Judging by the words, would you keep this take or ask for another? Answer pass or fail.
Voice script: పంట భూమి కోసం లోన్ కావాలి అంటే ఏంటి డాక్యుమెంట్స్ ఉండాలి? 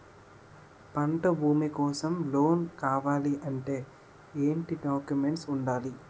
pass